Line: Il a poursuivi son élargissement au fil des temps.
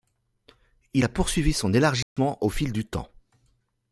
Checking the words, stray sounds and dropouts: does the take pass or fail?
fail